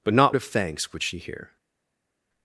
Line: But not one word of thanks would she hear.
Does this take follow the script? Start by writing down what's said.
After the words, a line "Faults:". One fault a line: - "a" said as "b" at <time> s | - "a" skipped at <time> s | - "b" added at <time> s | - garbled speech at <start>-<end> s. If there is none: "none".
But not of thanks would she hear.
Faults:
- "one word" skipped at 0.3 s